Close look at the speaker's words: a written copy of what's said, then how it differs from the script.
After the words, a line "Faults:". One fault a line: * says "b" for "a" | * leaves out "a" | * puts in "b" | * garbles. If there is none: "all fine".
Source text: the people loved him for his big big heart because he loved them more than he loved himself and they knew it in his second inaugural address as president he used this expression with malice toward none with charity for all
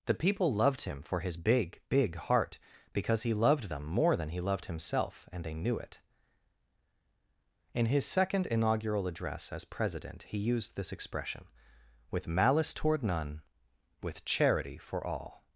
the people loved him for his big big heart because he loved them more than he loved himself and they knew it in his second inaugural address as president he used this expression with malice toward none with charity for all
Faults:
all fine